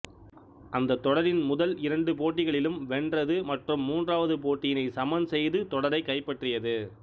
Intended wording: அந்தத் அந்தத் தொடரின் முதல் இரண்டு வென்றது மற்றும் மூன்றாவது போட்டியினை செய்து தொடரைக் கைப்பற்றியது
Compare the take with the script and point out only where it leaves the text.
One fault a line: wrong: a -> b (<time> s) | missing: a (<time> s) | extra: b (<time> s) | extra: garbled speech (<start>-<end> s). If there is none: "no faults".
missing: அந்தத் (1.0 s)
extra: போட்டிகளிலும் (2.1 s)
extra: சமன் (5.0 s)